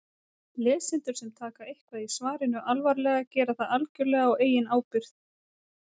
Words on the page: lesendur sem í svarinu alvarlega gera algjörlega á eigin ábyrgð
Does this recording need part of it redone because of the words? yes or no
yes